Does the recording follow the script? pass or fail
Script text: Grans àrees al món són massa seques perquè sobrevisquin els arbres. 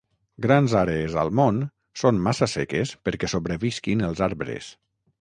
pass